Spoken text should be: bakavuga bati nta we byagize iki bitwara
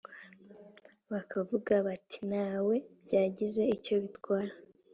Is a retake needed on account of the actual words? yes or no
yes